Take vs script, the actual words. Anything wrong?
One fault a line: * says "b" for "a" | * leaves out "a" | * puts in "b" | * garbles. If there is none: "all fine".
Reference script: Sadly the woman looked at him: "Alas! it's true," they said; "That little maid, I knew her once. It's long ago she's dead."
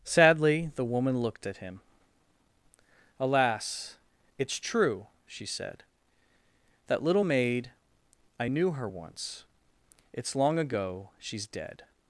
* says "she" for "they"